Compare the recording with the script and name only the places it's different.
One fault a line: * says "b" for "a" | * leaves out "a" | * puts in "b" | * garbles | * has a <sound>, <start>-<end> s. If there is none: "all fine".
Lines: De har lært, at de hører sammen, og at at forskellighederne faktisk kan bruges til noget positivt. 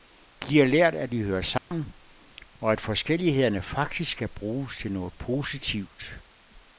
* has a dropout, 1.6-1.7 s
* leaves out "at"